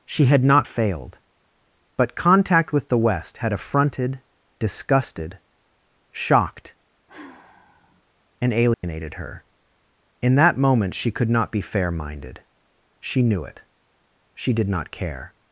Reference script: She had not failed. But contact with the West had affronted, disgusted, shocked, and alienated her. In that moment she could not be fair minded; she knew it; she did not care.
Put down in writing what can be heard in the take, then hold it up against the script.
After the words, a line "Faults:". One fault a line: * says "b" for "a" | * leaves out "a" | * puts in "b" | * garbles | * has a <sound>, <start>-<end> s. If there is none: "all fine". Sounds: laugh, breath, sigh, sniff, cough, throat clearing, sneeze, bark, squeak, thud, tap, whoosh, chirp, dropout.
She had not failed. But contact with the West had affronted, disgusted, shocked, and alienated her. In that moment she could not be fair minded; she knew it; she did not care.
Faults:
* has a sigh, 7.1-8.0 s
* has a dropout, 8.7-8.8 s